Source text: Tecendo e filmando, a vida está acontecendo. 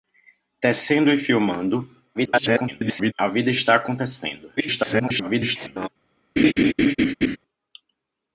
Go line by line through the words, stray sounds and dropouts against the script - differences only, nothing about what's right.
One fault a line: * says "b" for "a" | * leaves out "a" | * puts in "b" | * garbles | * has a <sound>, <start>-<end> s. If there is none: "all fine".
* garbles
* garbles
* has a laugh, 6.4-7.4 s